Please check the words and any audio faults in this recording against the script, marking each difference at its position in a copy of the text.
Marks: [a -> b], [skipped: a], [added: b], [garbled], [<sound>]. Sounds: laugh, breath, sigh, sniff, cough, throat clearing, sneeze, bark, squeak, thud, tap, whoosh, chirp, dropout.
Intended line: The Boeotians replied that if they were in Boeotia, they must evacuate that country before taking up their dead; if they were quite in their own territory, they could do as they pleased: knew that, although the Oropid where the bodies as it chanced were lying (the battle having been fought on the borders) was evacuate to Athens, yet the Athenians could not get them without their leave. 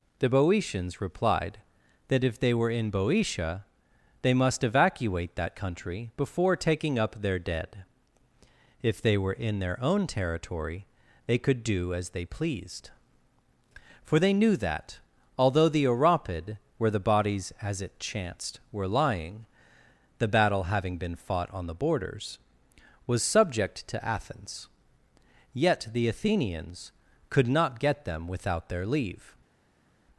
The Boeotians replied that if they were in Boeotia, they must evacuate that country before taking up their dead; if they were [skipped: quite] in their own territory, they could do as they pleased: [added: for they] knew that, although the Oropid where the bodies as it chanced were lying (the battle having been fought on the borders) was [evacuate -> subject] to Athens, yet the Athenians could not get them without their leave.